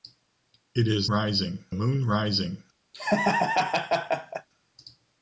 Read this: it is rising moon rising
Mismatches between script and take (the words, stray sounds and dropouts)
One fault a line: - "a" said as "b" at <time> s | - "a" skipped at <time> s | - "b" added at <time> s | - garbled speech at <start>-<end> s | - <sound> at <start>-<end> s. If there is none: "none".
- laugh at 2.9-4.5 s